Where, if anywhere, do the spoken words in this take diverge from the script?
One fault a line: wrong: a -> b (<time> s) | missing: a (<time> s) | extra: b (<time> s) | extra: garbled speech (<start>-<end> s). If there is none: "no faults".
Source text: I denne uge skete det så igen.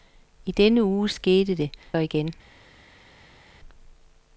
missing: så (1.7 s)